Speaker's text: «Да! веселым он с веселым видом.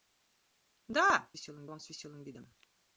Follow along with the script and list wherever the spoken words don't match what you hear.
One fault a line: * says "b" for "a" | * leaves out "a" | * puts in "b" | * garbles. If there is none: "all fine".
all fine